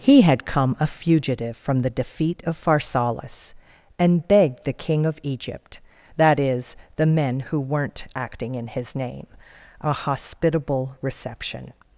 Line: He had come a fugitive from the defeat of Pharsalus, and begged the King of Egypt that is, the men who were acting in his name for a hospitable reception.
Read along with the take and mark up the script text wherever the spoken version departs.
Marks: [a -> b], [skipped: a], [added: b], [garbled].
He had come a fugitive from the defeat of Pharsalus, and begged the King of Egypt that is, the men who [were -> weren't] acting in his name [skipped: for] a hospitable reception.